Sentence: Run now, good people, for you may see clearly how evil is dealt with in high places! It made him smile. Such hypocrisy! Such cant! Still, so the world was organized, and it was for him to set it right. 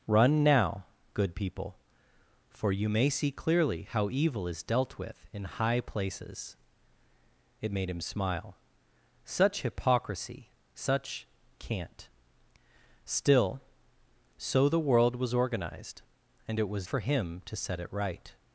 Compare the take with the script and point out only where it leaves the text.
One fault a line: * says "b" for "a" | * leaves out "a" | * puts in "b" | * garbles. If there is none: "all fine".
all fine